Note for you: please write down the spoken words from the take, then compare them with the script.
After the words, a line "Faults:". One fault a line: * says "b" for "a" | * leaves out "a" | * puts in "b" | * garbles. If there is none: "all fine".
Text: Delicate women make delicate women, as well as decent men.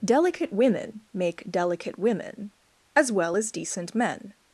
Delicate women make delicate women, as well as decent men.
Faults:
all fine